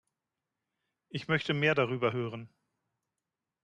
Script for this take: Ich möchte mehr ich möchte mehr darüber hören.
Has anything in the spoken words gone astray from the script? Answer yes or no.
yes